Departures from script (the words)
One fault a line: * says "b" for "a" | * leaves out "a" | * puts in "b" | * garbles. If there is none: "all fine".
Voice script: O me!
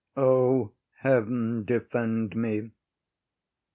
* puts in "heaven defend"